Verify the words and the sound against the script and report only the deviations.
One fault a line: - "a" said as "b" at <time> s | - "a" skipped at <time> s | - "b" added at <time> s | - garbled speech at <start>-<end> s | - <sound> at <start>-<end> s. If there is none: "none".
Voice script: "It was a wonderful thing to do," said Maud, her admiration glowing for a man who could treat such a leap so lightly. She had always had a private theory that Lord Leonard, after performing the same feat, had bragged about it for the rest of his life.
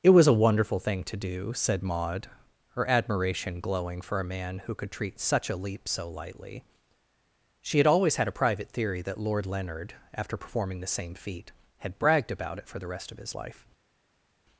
none